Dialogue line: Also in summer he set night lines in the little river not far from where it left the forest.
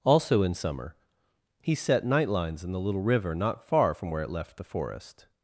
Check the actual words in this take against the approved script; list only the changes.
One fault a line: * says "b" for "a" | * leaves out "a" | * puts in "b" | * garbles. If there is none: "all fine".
all fine